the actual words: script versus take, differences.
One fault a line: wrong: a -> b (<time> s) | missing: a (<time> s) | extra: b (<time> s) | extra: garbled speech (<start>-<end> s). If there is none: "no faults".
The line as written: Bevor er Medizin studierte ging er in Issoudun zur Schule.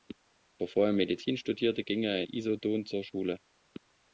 missing: in (2.2 s)